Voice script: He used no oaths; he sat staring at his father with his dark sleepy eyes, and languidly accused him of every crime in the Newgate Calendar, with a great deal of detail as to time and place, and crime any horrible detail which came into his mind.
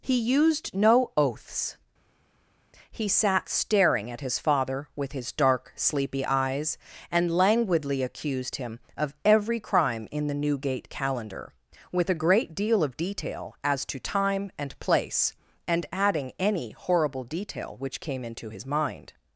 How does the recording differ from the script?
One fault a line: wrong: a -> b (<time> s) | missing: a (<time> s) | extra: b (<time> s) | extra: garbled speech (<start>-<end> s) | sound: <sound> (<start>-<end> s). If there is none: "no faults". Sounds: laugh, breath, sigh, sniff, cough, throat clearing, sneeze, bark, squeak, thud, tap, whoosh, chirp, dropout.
wrong: crime -> adding (15.9 s)